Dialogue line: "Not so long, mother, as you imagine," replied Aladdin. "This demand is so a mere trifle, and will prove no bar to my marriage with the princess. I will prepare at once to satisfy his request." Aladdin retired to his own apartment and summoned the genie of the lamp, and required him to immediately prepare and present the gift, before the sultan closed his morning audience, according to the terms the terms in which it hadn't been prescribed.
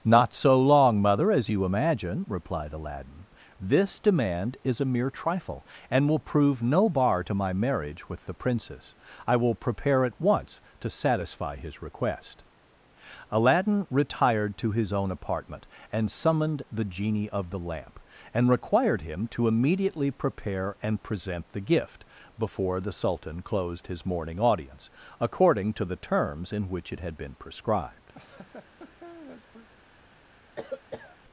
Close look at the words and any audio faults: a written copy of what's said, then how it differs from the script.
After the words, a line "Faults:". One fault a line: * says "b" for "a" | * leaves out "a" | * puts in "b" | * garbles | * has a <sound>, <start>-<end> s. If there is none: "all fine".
"Not so long, mother, as you imagine," replied Aladdin. "This demand is a mere trifle, and will prove no bar to my marriage with the princess. I will prepare at once to satisfy his request." Aladdin retired to his own apartment and summoned the genie of the lamp, and required him to immediately prepare and present the gift, before the sultan closed his morning audience, according to the terms in which it had been prescribed.
Faults:
* leaves out "so"
* leaves out "the terms"
* says "had" for "hadn't"
* has a laugh, 28.1-29.7 s
* has a cough, 30.6-31.2 s